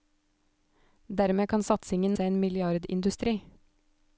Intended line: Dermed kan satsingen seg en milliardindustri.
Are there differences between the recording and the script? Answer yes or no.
no